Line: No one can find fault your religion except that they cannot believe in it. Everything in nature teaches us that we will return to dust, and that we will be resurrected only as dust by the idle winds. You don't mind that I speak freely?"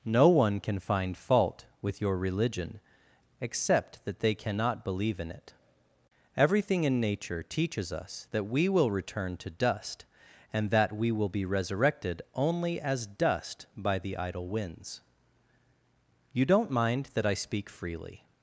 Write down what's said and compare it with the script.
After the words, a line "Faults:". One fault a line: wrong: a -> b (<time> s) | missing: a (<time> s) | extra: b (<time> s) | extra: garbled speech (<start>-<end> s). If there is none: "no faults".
No one can find fault with your religion except that they cannot believe in it. Everything in nature teaches us that we will return to dust, and that we will be resurrected only as dust by the idle winds. You don't mind that I speak freely?"
Faults:
extra: with (1.8 s)